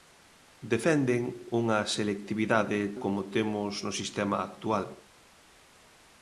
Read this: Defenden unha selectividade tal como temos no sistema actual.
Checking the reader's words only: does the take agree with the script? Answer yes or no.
no